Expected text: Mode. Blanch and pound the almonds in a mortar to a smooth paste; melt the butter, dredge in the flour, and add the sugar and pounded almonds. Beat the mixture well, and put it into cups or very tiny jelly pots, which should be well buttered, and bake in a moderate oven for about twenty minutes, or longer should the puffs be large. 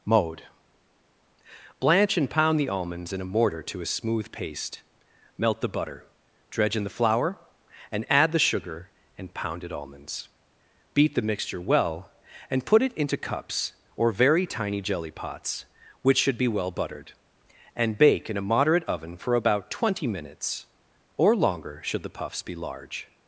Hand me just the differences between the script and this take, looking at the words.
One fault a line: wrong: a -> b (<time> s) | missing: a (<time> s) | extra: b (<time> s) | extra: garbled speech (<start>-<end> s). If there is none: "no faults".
no faults